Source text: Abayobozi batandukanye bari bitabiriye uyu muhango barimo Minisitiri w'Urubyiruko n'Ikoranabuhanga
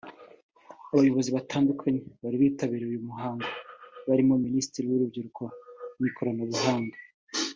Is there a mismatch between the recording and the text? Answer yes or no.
no